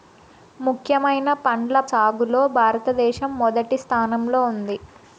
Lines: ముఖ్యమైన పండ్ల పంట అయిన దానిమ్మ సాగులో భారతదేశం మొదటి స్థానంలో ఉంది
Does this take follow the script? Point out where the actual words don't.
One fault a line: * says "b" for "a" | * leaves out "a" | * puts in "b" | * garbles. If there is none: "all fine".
* leaves out "పంట అయిన దానిమ్మ"